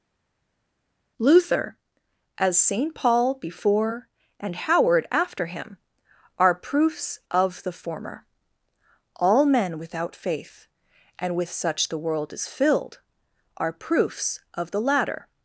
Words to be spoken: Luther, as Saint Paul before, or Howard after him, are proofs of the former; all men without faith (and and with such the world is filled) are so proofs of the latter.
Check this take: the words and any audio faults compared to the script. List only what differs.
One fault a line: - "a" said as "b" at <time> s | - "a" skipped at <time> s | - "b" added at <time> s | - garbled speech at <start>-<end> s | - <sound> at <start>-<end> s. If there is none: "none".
- "or" said as "and" at 4.4 s
- "and" skipped at 11.3 s
- "so" skipped at 13.7 s